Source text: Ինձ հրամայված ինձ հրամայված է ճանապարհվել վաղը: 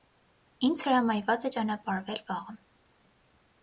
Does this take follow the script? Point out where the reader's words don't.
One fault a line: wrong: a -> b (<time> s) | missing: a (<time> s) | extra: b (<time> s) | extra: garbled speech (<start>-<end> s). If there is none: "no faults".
missing: ինձ հրամայված (1.5 s)